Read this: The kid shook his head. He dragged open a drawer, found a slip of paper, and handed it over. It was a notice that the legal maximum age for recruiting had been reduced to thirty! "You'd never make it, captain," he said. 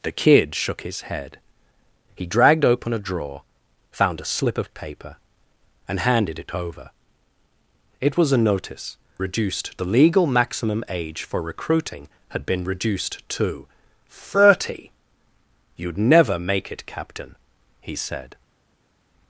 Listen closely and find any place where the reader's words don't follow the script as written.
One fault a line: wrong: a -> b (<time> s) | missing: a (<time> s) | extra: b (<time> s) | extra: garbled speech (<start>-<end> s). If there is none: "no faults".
wrong: that -> reduced (9.2 s)